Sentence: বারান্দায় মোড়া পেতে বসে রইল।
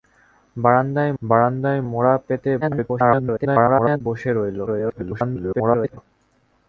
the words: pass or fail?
fail